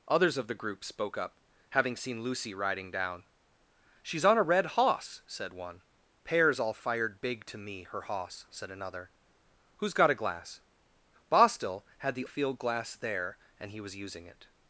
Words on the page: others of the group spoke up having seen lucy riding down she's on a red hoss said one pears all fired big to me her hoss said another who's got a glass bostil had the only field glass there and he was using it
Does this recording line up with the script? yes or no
no